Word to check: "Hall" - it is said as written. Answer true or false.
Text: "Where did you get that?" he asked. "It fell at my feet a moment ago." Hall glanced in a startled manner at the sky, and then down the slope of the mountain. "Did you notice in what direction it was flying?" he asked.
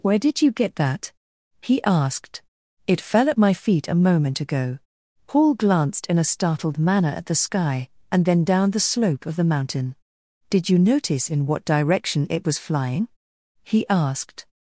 false